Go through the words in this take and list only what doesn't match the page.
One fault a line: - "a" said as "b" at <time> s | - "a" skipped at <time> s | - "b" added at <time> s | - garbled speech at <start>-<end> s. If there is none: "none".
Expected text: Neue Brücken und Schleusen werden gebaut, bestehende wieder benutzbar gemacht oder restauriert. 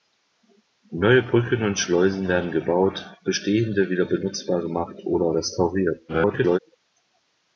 - garbled speech at 6.1-6.6 s